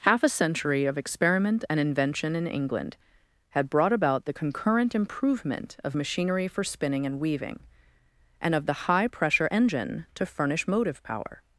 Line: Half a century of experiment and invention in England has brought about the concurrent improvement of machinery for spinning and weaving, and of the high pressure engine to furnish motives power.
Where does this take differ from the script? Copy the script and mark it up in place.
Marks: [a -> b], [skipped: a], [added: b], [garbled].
Half a century of experiment and invention in England [has -> had] brought about the concurrent improvement of machinery for spinning and weaving, and of the high pressure engine to furnish [motives -> motive] power.